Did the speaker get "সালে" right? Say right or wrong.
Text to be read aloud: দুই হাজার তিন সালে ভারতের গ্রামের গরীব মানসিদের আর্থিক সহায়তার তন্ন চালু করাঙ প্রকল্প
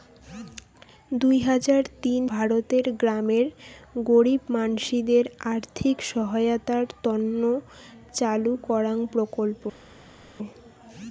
wrong